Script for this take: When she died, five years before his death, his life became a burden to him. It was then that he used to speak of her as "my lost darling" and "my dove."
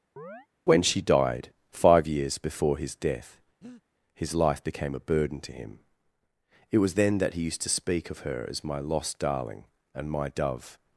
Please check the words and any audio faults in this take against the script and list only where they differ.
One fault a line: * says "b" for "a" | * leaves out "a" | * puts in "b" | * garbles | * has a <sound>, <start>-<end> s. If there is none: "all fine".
* has a chirp, 0.2-0.5 s
* has a breath, 3.6-3.8 s